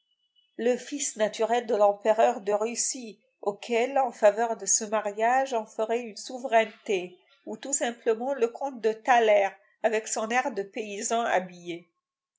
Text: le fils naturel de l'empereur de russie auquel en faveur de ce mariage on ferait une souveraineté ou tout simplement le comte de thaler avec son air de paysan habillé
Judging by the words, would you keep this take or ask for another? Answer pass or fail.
pass